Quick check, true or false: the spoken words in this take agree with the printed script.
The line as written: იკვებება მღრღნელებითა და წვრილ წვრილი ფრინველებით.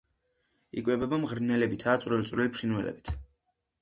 true